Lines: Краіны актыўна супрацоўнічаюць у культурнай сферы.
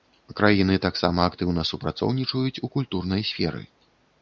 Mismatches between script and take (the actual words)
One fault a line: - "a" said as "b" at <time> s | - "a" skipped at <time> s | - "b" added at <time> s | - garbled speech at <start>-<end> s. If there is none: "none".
- "таксама" added at 0.8 s